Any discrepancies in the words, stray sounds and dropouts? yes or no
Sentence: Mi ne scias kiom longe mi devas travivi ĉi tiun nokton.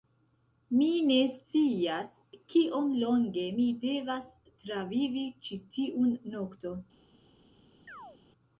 yes